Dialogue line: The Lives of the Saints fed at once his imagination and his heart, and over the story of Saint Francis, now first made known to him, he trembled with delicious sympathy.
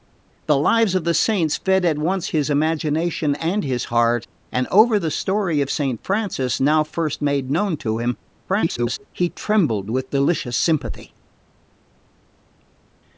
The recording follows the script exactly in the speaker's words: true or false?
false